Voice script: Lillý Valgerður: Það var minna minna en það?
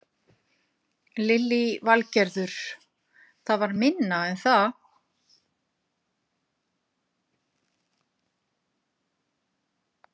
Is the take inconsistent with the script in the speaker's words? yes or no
yes